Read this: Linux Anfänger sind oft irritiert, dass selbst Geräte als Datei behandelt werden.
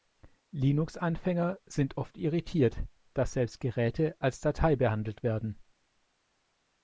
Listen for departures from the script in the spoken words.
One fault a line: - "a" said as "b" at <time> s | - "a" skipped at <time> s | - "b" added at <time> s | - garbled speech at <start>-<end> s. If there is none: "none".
none